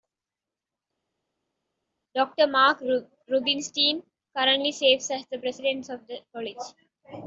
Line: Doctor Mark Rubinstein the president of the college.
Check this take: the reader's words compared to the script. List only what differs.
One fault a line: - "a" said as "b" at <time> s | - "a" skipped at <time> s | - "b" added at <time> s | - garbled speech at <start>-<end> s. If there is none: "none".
- "currently serves as" added at 4.3 s